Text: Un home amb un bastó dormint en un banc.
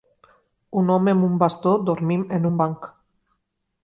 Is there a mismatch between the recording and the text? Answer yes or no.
no